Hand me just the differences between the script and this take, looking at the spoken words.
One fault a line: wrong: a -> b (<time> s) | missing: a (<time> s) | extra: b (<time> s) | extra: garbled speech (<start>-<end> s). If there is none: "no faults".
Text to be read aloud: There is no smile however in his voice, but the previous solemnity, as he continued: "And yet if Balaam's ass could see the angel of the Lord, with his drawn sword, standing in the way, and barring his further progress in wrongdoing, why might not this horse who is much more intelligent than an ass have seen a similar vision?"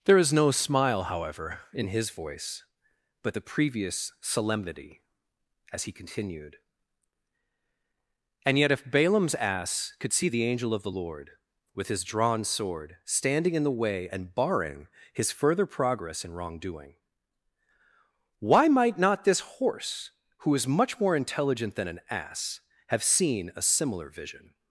no faults